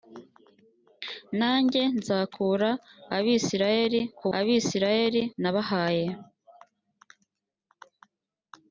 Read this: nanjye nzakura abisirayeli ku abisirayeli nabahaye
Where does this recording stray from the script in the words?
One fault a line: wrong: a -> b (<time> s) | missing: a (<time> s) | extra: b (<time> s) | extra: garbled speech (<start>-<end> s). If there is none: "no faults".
no faults